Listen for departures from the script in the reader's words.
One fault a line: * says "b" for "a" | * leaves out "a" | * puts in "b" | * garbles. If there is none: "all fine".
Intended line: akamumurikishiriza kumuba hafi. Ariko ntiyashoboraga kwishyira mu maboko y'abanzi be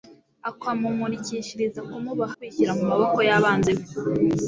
* leaves out "hafi Ariko ntiyashoboraga"